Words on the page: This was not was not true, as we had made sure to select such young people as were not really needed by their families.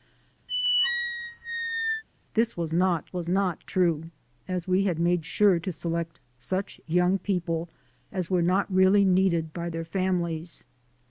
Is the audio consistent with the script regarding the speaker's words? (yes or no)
yes